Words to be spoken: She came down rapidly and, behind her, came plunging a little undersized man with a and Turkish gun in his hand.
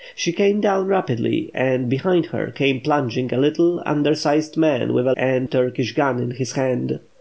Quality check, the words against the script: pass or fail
pass